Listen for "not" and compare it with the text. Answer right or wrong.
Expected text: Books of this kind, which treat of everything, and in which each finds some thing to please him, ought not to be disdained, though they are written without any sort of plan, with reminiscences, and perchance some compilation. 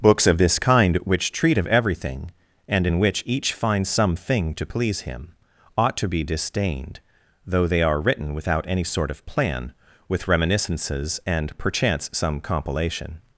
wrong